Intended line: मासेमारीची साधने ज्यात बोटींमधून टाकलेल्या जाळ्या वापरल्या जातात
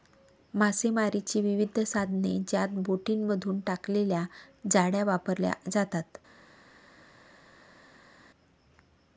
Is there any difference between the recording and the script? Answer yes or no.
yes